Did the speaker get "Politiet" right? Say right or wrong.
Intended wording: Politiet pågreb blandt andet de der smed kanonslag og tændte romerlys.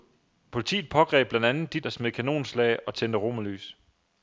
right